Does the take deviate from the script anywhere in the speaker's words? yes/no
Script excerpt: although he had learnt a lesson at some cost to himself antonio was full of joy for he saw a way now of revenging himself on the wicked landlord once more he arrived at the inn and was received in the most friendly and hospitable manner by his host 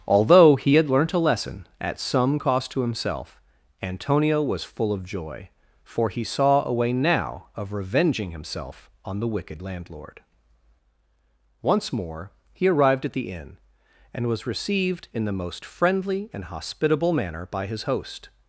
no